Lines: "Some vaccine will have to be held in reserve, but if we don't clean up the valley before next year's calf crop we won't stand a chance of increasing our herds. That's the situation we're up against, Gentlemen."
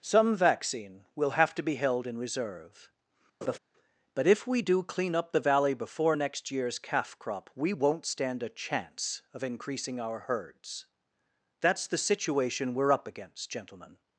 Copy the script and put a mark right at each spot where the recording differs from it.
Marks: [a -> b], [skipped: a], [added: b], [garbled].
"Some vaccine will have to be held in reserve, but if we [don't -> do] clean up the valley before next year's calf crop we won't stand a chance of increasing our herds. That's the situation we're up against, Gentlemen."